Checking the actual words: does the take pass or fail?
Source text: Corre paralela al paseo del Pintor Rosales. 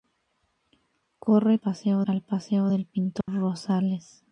fail